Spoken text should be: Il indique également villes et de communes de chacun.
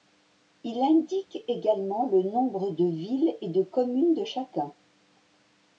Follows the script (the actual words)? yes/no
no